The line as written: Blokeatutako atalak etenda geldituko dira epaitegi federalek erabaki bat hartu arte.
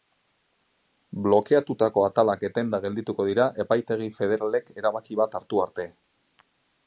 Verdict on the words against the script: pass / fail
pass